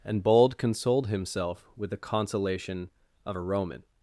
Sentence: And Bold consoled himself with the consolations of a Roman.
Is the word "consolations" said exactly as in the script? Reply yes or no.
no